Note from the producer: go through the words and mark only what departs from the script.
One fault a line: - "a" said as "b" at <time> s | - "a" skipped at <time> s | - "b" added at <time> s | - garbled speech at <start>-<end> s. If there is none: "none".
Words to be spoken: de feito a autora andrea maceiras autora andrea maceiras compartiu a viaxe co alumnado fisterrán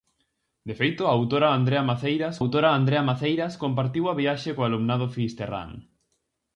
none